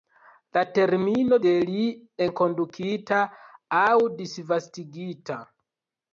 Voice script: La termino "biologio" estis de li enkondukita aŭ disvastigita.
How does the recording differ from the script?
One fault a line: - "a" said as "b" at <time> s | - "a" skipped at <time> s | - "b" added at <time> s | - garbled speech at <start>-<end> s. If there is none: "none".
- "biologio estis" skipped at 1.4 s